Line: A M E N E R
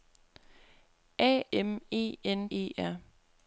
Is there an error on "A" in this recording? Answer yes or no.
no